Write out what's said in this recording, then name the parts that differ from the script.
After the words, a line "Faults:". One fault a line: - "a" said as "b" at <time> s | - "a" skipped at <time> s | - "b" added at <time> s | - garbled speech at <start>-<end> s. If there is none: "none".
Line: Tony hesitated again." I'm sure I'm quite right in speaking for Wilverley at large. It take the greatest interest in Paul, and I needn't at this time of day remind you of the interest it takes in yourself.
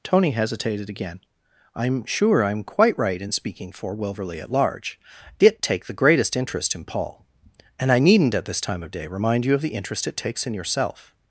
Tony hesitated again." I'm sure I'm quite right in speaking for Wilverley at large. It take the greatest interest in Paul, and I needn't at this time of day remind you of the interest it takes in yourself.
Faults:
none